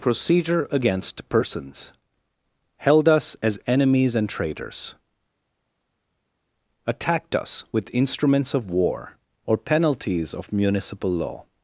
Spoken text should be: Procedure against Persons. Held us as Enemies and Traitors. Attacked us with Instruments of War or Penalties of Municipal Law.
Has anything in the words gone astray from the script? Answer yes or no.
no